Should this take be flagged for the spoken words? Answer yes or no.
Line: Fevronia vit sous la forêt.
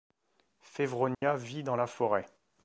yes